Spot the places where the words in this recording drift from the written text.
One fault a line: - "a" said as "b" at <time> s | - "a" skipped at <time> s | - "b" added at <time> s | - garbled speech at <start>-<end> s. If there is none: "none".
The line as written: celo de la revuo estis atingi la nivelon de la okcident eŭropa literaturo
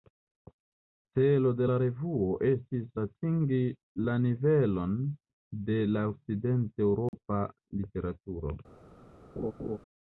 none